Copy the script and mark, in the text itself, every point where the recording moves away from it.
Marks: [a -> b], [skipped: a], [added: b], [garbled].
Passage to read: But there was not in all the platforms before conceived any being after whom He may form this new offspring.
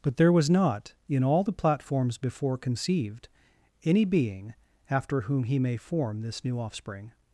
But there was not in all the platforms before conceived any being after whom He may form this new offspring.